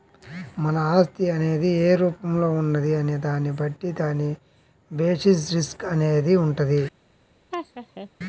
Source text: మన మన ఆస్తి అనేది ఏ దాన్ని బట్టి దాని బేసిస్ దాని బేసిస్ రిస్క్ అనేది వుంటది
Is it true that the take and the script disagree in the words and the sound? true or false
true